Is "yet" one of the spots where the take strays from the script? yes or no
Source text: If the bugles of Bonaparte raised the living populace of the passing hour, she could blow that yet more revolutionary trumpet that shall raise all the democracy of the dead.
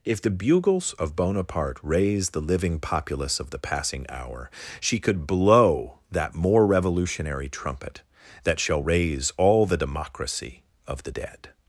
yes